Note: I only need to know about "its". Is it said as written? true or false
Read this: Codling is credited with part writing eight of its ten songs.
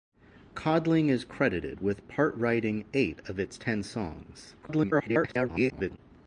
true